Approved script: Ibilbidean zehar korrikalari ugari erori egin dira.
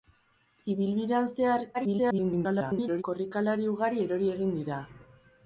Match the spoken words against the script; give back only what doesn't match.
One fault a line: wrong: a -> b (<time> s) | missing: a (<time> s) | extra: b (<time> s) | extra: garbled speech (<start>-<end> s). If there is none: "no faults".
extra: garbled speech (1.7-3.0 s)